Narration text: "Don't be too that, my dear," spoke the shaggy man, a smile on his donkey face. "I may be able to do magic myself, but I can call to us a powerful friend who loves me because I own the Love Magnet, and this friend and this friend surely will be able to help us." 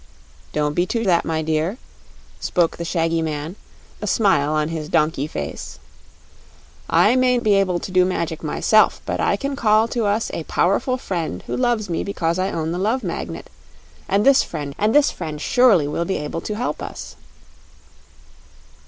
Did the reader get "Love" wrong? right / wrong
right